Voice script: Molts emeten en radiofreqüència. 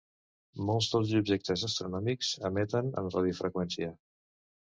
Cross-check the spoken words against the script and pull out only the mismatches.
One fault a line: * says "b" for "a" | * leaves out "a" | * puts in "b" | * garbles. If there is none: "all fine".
* puts in "dels objectes astronòmics"